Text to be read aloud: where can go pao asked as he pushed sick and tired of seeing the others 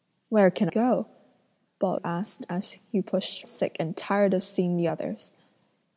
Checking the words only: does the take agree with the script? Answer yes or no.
yes